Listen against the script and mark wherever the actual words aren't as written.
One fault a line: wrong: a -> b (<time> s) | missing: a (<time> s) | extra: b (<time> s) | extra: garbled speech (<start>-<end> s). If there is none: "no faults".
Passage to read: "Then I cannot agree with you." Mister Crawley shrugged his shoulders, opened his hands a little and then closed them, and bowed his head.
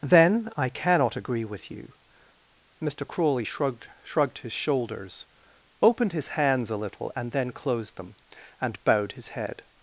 extra: shrugged (4.0 s)